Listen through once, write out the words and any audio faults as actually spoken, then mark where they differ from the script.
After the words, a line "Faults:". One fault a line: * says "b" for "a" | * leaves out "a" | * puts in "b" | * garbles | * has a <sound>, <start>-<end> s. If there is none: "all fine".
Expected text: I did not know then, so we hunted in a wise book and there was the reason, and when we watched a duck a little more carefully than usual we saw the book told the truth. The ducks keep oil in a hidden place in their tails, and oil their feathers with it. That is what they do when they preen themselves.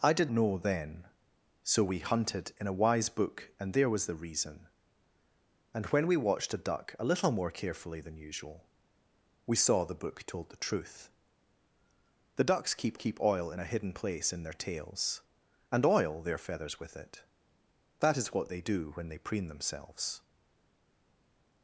I did know then, so we hunted in a wise book and there was the reason, and when we watched a duck a little more carefully than usual we saw the book told the truth. The ducks keep keep oil in a hidden place in their tails, and oil their feathers with it. That is what they do when they preen themselves.
Faults:
* leaves out "not"
* puts in "keep"